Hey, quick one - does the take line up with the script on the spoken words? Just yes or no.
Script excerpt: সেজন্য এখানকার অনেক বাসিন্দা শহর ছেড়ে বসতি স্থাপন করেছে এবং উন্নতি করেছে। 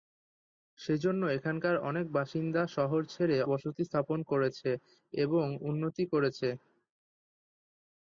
yes